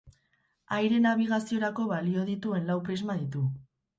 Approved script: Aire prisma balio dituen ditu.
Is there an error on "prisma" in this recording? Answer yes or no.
yes